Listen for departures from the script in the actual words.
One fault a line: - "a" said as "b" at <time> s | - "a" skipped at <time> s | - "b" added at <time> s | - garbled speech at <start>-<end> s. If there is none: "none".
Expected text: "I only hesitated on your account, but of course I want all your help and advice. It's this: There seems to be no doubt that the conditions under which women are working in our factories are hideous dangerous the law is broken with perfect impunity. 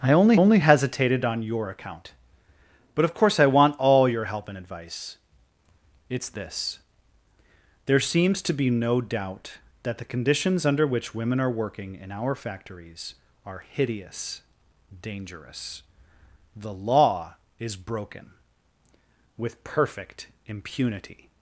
- "only" added at 0.3 s